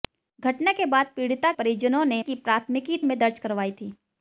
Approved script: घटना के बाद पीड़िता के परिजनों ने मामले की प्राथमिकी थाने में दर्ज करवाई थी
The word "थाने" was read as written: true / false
false